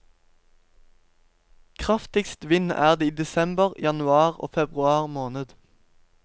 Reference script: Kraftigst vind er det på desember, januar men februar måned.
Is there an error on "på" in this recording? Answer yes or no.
yes